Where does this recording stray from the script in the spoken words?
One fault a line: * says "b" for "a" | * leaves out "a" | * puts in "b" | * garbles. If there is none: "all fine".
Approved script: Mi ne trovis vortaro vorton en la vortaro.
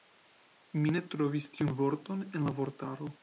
* says "tiun" for "vortaro"